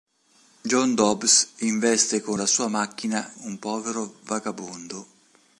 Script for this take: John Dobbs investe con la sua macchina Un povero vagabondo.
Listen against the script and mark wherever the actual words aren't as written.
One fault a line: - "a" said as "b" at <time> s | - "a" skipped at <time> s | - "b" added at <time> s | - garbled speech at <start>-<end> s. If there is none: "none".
none